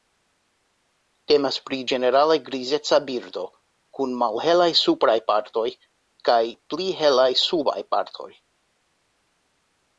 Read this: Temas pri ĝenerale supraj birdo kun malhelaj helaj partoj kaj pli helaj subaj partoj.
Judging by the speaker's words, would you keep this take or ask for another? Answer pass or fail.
fail